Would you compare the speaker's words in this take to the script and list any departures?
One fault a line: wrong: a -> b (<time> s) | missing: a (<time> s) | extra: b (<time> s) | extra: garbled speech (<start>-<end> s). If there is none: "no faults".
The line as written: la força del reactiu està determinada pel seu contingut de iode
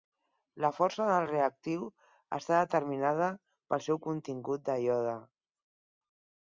no faults